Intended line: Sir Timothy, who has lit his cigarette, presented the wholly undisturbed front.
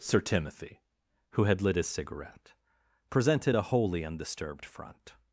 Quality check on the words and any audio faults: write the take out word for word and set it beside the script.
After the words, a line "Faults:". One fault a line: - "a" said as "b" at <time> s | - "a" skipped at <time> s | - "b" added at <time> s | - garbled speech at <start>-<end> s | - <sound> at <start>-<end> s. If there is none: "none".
Sir Timothy, who had lit his cigarette, presented a wholly undisturbed front.
Faults:
- "has" said as "had" at 1.4 s
- "the" said as "a" at 3.5 s